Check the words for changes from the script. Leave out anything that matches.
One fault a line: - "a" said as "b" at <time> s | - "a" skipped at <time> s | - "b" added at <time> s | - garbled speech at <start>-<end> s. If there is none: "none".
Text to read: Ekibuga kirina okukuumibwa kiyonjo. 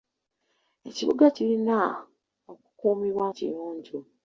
none